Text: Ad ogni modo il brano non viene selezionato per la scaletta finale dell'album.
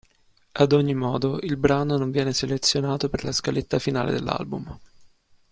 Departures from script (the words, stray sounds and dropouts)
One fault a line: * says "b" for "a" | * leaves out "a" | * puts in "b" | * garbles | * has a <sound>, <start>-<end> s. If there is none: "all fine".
all fine